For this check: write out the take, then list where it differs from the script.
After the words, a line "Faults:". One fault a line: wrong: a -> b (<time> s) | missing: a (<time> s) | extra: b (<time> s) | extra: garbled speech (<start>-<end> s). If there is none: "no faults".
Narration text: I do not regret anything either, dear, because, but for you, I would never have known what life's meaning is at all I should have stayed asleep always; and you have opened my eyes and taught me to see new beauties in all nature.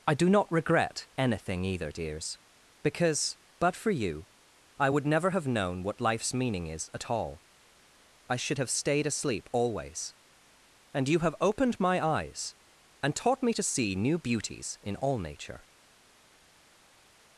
I do not regret anything either, dears, because, but for you, I would never have known what life's meaning is at all I should have stayed asleep always; and you have opened my eyes and taught me to see new beauties in all nature.
Faults:
wrong: dear -> dears (1.9 s)